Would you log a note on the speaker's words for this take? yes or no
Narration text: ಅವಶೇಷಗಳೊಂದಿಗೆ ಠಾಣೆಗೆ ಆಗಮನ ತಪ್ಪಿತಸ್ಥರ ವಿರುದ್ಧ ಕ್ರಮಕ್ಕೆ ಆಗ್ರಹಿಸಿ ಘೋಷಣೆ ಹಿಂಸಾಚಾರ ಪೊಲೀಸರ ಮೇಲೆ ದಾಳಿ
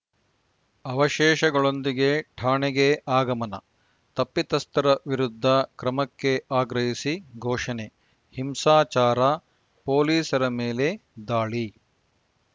no